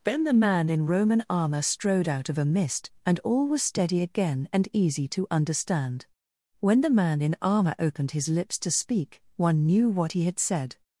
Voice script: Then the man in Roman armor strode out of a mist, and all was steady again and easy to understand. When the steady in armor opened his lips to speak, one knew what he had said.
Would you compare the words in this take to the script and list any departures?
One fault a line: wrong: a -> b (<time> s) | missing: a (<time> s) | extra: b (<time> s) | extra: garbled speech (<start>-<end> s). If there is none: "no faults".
wrong: steady -> man (6.9 s)